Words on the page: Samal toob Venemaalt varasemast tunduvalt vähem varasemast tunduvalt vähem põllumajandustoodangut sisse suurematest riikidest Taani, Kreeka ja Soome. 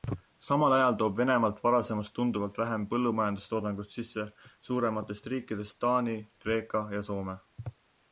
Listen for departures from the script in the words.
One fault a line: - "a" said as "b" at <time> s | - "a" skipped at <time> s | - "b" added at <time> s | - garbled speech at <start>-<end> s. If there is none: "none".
- "ajal" added at 0.8 s
- "varasemast tunduvalt vähem" skipped at 2.9 s